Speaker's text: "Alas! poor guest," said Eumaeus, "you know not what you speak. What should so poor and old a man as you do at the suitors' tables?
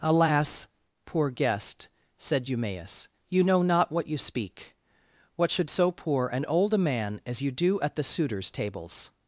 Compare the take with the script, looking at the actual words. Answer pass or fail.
pass